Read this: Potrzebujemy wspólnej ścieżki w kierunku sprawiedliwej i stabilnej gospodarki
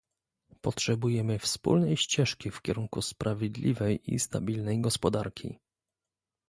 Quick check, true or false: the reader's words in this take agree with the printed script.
true